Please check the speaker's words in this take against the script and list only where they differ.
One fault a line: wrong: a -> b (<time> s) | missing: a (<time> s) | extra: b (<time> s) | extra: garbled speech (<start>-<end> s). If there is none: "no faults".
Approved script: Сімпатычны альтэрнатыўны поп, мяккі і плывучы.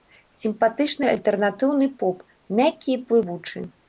no faults